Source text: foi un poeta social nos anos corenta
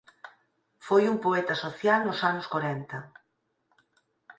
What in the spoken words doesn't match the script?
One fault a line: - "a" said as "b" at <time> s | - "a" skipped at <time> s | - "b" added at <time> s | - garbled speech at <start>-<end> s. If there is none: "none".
none